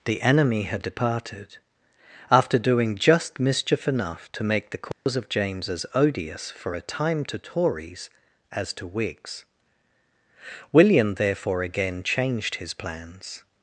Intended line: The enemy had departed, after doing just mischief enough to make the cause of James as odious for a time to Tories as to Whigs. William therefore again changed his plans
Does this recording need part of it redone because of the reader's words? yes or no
no